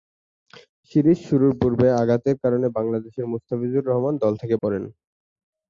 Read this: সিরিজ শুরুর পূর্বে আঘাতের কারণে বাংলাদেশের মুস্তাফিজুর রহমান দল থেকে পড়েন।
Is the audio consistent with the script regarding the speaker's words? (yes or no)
yes